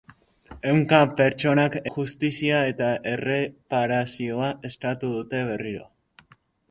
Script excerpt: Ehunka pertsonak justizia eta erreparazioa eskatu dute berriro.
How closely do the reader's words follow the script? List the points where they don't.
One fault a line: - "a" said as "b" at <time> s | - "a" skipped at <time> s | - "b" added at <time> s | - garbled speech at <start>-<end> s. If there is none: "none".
none